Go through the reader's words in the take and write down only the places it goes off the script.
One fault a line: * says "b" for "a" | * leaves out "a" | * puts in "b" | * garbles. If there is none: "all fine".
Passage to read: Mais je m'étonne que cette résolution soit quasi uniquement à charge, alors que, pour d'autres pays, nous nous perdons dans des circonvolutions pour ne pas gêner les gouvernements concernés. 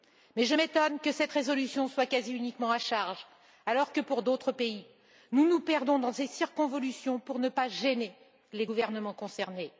all fine